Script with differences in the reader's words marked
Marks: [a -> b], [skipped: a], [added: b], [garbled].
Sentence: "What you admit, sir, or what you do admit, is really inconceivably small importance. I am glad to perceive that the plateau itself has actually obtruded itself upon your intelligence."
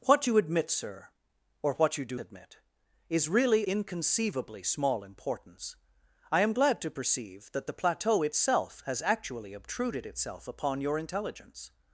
"What you admit, sir, or what you do admit, is really inconceivably small importance. I am glad to perceive that the plateau itself has actually obtruded itself upon your intelligence."